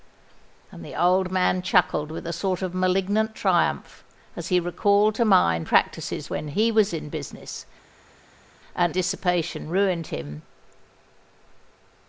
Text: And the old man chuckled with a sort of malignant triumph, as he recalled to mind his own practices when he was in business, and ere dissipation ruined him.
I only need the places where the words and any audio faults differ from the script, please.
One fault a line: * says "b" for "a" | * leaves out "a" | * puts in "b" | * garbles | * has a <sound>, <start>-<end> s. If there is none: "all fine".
* leaves out "his own"
* leaves out "ere"